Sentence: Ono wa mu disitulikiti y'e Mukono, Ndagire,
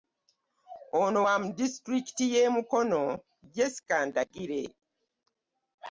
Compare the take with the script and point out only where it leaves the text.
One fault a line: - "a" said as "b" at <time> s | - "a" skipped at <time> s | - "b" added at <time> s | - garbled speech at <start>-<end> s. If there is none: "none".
- "Jessica" added at 3.5 s